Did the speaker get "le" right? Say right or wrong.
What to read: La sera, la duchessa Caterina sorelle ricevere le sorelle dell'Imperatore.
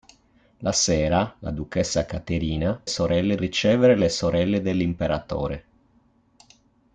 right